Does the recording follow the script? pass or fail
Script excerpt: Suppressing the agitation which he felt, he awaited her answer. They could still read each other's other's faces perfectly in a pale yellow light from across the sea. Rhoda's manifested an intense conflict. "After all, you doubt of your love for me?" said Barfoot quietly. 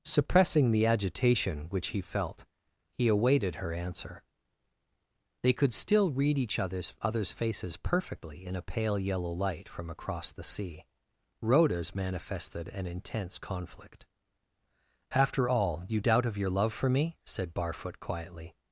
pass